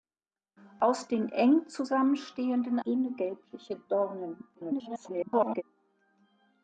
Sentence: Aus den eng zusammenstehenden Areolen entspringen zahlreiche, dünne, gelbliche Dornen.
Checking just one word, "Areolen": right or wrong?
wrong